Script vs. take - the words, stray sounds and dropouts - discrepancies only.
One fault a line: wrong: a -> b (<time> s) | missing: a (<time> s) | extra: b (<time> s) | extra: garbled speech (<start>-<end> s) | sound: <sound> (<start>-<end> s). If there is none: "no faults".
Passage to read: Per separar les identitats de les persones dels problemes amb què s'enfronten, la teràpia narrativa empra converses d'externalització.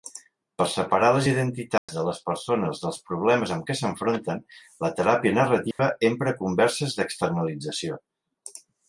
sound: dropout (1.8-1.9 s)
sound: dropout (5.7-5.8 s)